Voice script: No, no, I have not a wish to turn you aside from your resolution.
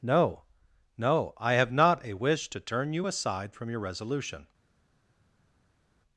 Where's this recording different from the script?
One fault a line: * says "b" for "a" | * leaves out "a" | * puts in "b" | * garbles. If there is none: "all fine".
all fine